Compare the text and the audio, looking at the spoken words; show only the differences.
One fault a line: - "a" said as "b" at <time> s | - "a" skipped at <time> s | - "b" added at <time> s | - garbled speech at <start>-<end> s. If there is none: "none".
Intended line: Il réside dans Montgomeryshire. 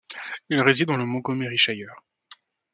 - "le" added at 0.9 s